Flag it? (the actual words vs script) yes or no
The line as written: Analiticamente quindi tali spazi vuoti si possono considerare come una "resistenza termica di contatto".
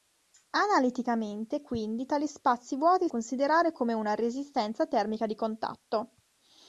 yes